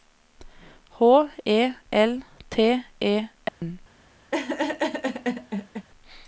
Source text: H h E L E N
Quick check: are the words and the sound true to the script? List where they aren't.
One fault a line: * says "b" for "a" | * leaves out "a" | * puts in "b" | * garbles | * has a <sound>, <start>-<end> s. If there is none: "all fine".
* leaves out "h"
* puts in "T"
* has a dropout, 3.5-3.6 s
* has a laugh, 4.3-5.9 s